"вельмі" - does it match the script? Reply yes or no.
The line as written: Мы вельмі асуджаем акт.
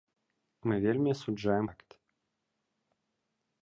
yes